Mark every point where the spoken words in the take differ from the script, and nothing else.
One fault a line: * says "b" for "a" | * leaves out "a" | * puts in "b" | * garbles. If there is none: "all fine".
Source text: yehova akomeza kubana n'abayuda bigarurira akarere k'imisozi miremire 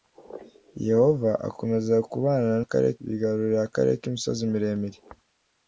* says "akarere" for "n'abayuda"